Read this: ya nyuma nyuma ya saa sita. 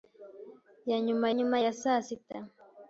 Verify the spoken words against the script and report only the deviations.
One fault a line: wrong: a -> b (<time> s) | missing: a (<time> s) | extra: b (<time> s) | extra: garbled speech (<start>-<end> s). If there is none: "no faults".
no faults